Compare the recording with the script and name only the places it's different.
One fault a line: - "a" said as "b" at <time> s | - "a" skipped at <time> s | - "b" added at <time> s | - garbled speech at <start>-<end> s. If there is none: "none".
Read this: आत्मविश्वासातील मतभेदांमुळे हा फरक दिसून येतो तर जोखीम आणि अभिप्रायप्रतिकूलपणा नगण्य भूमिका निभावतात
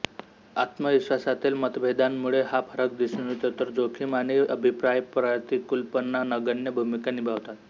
none